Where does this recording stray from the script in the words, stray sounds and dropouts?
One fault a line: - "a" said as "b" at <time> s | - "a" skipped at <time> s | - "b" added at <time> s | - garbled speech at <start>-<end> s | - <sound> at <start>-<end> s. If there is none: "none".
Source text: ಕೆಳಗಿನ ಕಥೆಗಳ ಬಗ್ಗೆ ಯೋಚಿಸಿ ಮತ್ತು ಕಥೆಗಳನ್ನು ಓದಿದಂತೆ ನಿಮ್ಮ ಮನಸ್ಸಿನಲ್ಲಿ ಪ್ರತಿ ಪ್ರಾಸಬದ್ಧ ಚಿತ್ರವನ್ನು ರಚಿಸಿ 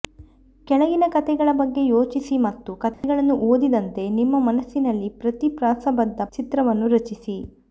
- dropout at 2.9-3.0 s